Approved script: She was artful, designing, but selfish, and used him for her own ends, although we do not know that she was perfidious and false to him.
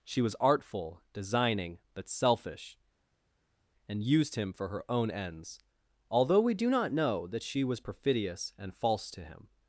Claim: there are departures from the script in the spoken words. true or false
false